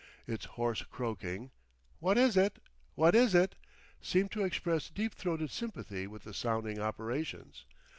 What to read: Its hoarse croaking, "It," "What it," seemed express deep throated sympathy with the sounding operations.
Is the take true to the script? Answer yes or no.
no